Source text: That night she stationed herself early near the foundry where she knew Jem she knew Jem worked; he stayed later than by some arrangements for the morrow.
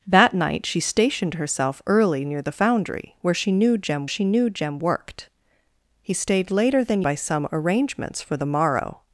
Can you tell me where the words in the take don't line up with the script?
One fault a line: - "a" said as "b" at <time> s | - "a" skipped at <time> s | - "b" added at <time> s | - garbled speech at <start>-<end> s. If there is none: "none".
none